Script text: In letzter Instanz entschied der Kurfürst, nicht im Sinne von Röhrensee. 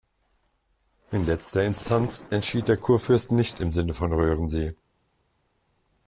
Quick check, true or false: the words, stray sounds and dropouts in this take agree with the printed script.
true